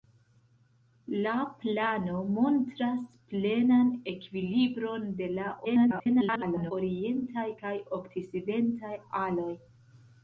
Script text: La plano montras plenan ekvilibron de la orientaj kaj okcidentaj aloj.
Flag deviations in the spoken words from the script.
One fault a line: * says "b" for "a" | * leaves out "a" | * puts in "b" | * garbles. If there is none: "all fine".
* garbles